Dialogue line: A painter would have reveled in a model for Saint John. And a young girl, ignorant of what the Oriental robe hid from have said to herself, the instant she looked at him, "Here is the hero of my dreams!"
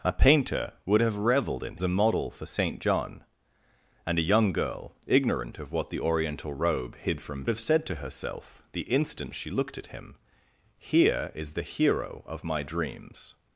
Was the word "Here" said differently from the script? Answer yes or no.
no